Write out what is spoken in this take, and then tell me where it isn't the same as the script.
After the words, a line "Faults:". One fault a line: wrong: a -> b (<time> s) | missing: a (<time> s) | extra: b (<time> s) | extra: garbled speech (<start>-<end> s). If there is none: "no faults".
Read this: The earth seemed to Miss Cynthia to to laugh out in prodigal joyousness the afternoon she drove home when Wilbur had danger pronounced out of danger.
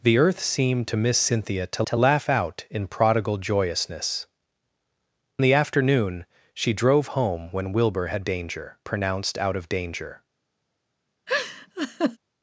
The earth seemed to Miss Cynthia to to laugh out in prodigal joyousness the afternoon she drove home when Wilbur had danger pronounced out of danger.
Faults:
no faults